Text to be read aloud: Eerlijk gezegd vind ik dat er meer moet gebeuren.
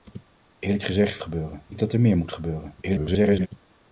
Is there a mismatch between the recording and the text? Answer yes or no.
yes